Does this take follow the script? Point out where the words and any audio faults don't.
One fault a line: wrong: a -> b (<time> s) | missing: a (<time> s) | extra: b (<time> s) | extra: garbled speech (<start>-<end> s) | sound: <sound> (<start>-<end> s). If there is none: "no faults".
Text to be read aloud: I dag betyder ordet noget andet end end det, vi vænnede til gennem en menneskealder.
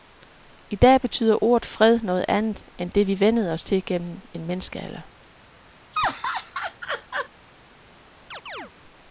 extra: fred (1.6 s)
missing: end (2.9 s)
extra: os (3.5 s)
sound: laugh (5.9-7.3 s)
sound: chirp (8.3-8.7 s)